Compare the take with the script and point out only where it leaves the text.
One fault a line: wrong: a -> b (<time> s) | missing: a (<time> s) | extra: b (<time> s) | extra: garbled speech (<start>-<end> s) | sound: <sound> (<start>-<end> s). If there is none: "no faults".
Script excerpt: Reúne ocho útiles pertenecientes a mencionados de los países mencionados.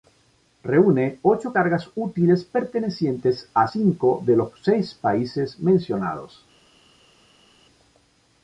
extra: cargas (1.5 s)
wrong: mencionados -> cinco (3.6 s)
extra: seis (4.6 s)